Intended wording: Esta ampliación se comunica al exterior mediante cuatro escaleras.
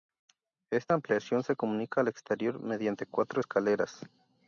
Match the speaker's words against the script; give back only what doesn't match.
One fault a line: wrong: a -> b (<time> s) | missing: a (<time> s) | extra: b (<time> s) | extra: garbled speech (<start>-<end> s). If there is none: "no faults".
no faults